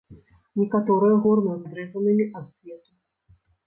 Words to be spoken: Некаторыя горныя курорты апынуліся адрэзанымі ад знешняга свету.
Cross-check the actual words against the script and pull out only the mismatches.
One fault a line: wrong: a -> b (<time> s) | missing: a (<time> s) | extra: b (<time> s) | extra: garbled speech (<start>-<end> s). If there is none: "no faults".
missing: курорты апынуліся (1.6 s)
missing: знешняга (2.4 s)